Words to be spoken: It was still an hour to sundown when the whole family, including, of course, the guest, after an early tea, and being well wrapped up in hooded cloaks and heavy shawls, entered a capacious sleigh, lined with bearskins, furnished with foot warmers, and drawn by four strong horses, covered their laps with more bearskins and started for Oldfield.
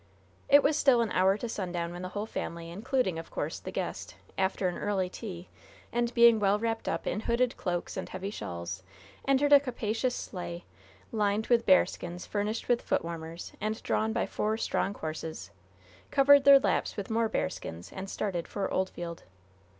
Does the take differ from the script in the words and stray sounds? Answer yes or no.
no